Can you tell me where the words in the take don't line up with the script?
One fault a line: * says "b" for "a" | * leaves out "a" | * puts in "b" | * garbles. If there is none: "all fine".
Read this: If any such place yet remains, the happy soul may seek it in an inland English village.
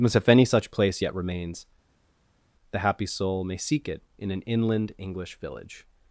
* puts in "as"